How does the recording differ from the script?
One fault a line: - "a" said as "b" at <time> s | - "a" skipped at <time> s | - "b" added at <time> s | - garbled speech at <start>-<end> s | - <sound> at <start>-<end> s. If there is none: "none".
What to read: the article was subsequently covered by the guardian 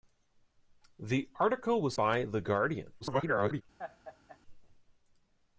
- "subsequently covered" skipped at 1.9 s
- garbled speech at 3.0-3.6 s
- laugh at 3.8-4.4 s